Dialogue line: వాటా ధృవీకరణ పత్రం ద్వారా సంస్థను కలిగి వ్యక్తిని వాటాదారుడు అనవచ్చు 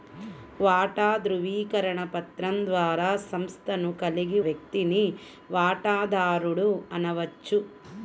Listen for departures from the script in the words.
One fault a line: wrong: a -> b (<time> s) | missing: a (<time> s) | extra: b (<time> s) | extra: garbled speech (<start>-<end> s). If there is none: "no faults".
no faults